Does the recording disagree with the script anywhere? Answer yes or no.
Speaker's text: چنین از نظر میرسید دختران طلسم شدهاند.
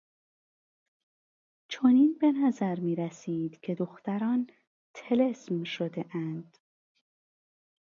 yes